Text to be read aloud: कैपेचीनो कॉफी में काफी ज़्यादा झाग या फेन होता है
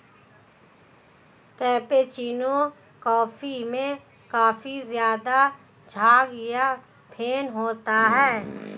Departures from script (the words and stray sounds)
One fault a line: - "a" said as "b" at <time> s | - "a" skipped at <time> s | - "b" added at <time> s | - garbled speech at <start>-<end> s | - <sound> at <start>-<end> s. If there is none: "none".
none